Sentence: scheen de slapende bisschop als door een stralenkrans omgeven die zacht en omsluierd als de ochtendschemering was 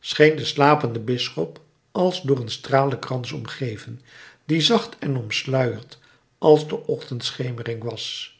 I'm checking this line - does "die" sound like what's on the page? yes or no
yes